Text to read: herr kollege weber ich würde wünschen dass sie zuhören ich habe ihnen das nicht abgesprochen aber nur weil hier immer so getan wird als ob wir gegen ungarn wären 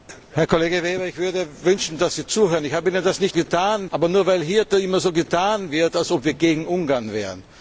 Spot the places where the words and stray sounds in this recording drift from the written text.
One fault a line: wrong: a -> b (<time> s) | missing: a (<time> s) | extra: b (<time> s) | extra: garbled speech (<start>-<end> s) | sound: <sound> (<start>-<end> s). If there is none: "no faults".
wrong: abgesprochen -> getan (3.3 s)